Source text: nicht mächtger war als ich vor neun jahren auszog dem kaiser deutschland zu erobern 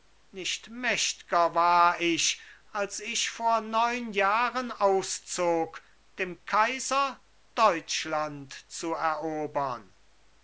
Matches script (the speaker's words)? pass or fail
fail